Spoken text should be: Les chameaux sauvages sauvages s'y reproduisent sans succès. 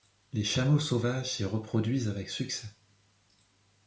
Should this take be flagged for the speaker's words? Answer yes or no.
yes